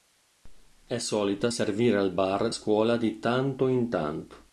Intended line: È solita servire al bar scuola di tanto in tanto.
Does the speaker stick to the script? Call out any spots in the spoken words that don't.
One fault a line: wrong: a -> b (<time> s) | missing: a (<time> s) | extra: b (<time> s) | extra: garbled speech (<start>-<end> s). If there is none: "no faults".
no faults